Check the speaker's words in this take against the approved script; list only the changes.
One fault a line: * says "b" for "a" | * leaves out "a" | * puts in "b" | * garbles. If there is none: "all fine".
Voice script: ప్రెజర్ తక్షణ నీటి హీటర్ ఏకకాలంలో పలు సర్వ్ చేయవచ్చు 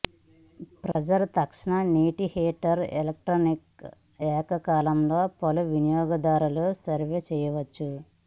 * puts in "ఎలక్ట్రిక్"
* puts in "వినియోగదారులు"